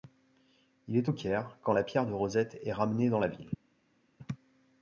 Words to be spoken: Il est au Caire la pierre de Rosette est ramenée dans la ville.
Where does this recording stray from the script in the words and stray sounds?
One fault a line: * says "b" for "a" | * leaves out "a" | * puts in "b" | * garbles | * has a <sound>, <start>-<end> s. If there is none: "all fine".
* puts in "quand"